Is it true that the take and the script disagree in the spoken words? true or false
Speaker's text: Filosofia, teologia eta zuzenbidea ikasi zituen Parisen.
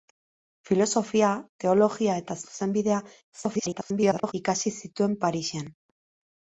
true